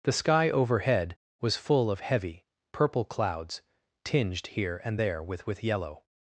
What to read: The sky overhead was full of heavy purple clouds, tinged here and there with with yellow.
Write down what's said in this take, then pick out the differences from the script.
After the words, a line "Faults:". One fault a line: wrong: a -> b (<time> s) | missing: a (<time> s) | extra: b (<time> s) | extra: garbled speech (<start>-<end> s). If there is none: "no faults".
The sky overhead was full of heavy purple clouds, tinged here and there with with yellow.
Faults:
no faults